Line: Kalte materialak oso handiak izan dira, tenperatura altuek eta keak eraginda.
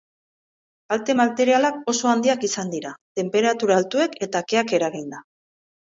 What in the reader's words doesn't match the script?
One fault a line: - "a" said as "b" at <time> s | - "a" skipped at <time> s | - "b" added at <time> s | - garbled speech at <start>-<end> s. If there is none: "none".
none